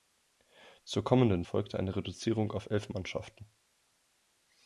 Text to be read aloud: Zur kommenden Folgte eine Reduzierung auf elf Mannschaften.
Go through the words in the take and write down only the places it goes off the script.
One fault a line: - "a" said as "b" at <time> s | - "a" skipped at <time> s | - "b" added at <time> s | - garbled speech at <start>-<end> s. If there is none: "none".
none